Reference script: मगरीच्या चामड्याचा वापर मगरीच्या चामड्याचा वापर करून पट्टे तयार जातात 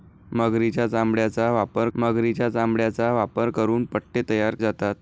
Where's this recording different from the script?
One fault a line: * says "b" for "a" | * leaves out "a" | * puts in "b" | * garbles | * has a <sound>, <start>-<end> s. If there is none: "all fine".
all fine